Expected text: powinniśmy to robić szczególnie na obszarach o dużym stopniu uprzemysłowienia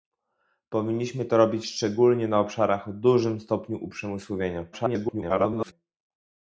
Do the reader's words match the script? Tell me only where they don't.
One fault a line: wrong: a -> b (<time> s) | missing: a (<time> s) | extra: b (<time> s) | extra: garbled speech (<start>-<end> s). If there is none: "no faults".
extra: garbled speech (4.7-5.7 s)